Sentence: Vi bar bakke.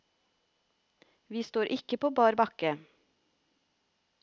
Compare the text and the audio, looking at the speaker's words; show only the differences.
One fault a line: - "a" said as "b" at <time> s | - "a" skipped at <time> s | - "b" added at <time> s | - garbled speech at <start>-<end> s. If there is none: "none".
- "står ikke på" added at 1.4 s